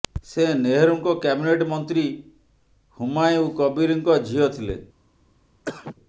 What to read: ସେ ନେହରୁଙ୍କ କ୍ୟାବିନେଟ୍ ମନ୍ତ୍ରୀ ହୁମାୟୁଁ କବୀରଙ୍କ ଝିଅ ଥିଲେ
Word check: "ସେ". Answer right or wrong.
right